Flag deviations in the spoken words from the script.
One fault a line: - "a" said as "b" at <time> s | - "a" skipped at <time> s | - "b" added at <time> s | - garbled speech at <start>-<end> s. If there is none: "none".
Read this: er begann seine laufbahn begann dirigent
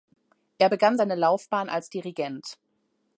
- "begann" said as "als" at 1.7 s